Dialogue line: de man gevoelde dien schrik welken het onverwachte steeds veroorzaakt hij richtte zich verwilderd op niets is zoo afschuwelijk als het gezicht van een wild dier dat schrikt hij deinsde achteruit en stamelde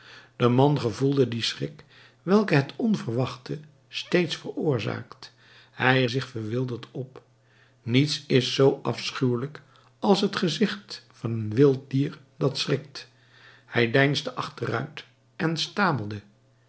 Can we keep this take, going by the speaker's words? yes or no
no